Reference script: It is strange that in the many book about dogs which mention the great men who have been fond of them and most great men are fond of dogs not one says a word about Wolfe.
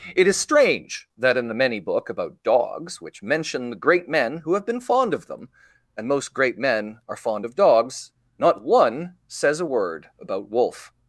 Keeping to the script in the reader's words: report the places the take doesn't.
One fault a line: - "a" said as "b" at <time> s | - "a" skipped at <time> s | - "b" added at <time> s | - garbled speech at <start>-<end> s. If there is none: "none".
none